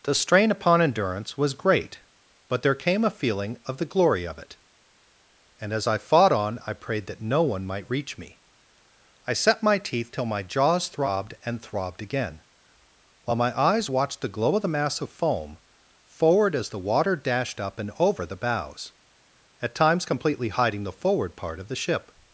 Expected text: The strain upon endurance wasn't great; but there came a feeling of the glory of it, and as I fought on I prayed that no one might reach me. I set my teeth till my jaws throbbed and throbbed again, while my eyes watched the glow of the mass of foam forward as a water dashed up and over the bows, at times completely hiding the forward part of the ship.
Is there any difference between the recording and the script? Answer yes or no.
yes